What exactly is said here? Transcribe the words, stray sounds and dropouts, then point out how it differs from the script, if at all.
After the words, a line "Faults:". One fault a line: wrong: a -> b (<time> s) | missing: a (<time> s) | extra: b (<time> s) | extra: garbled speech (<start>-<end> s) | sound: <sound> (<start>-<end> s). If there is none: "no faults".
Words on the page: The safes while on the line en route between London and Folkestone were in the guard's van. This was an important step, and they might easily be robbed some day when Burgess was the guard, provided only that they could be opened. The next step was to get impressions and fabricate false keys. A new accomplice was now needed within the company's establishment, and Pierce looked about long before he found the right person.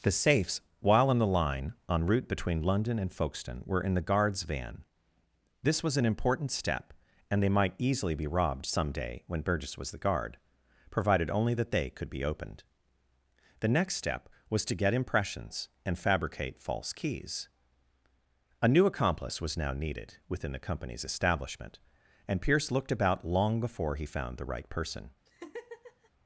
The safes while on the line en route between London and Folkestone were in the guard's van. This was an important step, and they might easily be robbed some day when Burgess was the guard, provided only that they could be opened. The next step was to get impressions and fabricate false keys. A new accomplice was now needed within the company's establishment, and Pierce looked about long before he found the right person.
Faults:
sound: laugh (25.3-26.1 s)